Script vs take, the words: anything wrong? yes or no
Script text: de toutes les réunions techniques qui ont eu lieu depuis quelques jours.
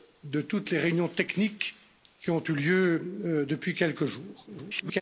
yes